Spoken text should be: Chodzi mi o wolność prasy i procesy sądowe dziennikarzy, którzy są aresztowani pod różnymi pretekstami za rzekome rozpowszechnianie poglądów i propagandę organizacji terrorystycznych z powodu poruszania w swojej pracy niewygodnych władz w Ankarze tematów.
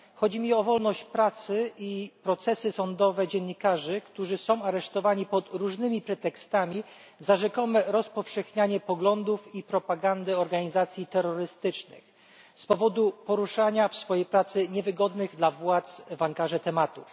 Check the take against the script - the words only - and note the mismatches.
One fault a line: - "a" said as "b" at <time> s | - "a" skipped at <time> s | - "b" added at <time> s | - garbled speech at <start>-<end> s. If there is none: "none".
- "dla" added at 15.4 s